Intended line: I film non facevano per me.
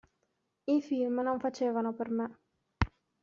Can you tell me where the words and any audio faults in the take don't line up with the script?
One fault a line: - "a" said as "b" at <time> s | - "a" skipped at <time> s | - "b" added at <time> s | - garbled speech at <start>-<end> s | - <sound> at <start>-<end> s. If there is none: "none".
none